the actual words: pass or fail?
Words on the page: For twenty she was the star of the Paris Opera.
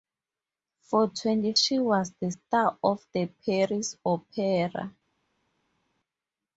pass